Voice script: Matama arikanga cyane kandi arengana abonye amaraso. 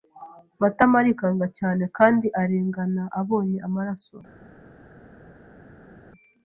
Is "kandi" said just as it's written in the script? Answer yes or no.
yes